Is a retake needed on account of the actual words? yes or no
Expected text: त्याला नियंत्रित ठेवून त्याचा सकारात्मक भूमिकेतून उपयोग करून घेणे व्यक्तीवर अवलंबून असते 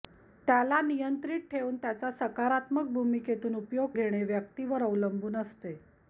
yes